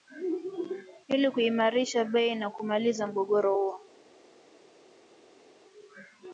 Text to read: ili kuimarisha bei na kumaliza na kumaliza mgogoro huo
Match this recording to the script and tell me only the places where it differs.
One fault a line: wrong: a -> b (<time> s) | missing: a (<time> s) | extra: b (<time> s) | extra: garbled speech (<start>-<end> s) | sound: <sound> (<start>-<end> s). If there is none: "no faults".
missing: na kumaliza (3.1 s)